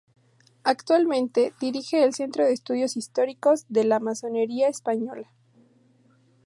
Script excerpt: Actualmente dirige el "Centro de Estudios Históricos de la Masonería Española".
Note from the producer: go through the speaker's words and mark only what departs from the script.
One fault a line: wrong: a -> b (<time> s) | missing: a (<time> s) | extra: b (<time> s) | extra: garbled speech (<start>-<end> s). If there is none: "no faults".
no faults